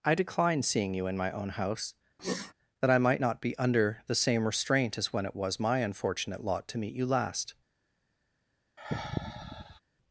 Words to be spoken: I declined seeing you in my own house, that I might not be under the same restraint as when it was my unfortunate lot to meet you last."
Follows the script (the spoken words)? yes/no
no